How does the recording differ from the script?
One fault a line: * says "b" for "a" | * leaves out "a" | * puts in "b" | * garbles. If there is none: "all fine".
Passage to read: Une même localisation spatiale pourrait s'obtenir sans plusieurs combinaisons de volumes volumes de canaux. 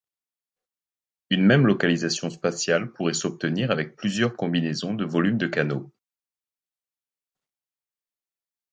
* says "avec" for "sans"
* leaves out "volumes"